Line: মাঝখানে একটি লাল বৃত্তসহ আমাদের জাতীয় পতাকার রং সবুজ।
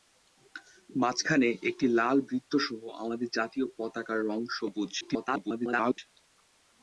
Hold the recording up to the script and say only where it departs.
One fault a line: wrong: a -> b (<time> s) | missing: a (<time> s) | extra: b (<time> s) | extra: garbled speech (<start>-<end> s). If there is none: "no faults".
extra: garbled speech (5.0-6.0 s)